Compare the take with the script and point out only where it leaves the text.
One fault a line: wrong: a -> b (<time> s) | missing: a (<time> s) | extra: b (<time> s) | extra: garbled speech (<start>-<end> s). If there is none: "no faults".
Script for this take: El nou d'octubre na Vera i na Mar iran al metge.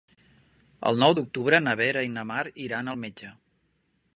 no faults